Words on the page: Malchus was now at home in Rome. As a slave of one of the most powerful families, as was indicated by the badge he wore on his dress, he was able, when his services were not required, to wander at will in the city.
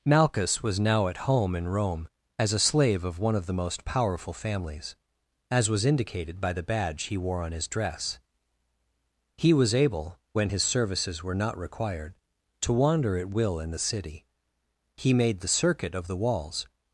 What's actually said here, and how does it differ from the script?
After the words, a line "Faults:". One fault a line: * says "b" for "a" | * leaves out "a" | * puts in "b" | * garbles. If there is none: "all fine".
Malchus was now at home in Rome. As a slave of one of the most powerful families, as was indicated by the badge he wore on his dress, he was able, when his services were not required, to wander at will in the city. He made the circuit of the walls
Faults:
* puts in "He made the circuit of the walls"